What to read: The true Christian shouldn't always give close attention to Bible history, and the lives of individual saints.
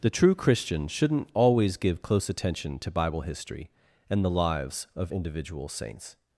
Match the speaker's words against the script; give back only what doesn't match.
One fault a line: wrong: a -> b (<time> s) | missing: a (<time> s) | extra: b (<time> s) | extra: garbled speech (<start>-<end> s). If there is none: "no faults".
no faults